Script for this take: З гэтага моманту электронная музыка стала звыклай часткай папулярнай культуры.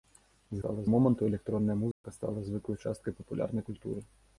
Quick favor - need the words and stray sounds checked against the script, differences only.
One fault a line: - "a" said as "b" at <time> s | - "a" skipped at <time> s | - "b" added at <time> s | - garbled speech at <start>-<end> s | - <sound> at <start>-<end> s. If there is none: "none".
- "гэтага" said as "стала" at 0.6 s
- dropout at 1.9-2.0 s